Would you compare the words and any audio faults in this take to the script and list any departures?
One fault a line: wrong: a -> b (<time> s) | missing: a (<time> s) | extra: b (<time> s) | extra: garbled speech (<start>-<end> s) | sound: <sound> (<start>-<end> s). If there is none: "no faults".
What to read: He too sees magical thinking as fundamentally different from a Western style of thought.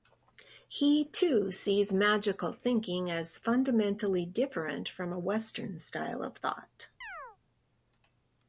sound: chirp (7.0-7.4 s)